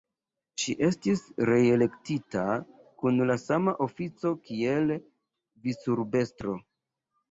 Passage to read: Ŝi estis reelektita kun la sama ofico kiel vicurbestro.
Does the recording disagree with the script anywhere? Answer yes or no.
no